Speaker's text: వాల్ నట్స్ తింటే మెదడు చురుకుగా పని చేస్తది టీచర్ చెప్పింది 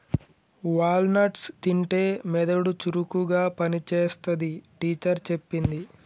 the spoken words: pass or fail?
pass